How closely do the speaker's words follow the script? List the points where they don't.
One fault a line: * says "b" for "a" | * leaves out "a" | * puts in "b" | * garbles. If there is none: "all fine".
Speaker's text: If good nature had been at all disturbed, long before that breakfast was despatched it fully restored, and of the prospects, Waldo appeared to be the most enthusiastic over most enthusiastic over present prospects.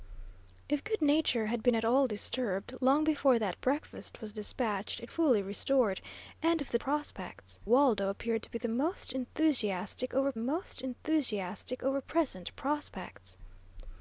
all fine